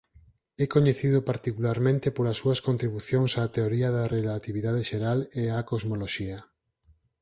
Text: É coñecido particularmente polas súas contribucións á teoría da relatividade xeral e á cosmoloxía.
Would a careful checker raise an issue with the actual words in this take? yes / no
no